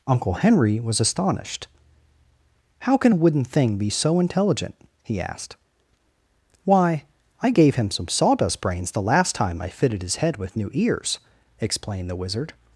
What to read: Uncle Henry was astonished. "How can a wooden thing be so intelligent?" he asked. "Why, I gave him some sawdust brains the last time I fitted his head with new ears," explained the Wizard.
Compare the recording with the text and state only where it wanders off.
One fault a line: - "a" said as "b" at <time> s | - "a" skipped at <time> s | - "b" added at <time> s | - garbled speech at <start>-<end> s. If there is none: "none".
none